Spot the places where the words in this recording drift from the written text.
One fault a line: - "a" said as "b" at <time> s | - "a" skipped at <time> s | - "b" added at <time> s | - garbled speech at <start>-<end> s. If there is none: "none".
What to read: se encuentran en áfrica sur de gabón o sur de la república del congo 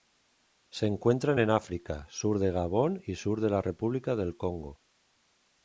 - "o" said as "y" at 3.1 s